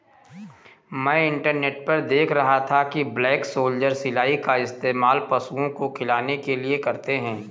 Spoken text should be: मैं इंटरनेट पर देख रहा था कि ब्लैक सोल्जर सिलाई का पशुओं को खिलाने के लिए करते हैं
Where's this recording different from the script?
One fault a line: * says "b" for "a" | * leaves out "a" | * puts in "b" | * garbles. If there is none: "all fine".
* puts in "इस्तेमाल"